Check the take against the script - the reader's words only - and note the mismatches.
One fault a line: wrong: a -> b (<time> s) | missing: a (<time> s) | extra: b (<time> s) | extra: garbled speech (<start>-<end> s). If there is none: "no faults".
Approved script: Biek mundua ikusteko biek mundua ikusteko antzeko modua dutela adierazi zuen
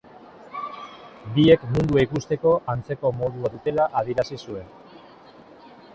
missing: biek mundua ikusteko (2.5 s)